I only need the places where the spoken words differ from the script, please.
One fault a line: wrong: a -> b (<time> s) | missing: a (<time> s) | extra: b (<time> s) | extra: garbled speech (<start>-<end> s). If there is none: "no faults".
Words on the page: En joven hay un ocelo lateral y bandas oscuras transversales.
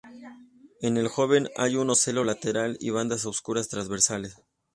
extra: el (1.0 s)